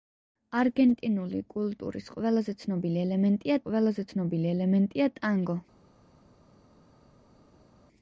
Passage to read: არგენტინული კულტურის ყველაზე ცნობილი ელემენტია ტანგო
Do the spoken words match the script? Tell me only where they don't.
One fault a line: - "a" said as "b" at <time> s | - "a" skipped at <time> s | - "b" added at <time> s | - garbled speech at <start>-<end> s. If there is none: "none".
- "ყველაზე ცნობილი ელემენტია" added at 3.6 s